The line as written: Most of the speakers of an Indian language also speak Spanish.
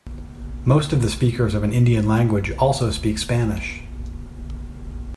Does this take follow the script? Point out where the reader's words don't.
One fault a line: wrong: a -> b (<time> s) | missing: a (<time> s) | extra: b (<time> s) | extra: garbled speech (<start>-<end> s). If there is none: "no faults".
no faults